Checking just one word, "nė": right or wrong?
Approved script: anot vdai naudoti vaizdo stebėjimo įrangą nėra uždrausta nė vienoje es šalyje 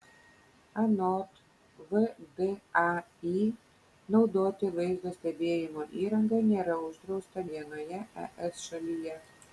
wrong